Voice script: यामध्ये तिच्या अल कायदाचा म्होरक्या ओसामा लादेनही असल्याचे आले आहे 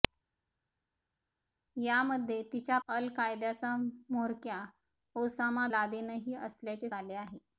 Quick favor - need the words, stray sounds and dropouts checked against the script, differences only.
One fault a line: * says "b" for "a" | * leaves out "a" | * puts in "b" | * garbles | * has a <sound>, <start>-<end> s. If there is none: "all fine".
all fine